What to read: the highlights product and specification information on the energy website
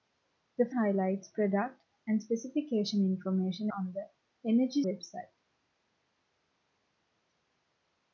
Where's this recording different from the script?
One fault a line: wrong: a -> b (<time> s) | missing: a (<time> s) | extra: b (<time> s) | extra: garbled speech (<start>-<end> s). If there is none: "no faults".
no faults